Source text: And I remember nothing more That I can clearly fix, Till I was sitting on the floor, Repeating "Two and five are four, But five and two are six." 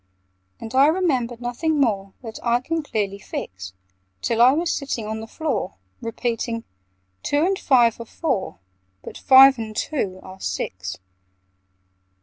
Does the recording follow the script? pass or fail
pass